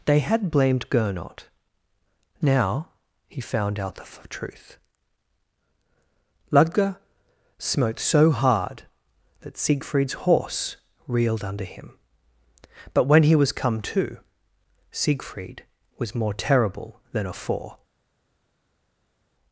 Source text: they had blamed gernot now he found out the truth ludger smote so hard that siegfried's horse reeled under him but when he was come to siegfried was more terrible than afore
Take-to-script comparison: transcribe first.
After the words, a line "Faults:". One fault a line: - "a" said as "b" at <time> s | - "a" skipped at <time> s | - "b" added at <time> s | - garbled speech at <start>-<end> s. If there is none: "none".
they had blamed gernot now he found out the f truth ludger smote so hard that siegfried's horse reeled under him but when he was come to siegfried was more terrible than afore
Faults:
- "f" added at 4.0 s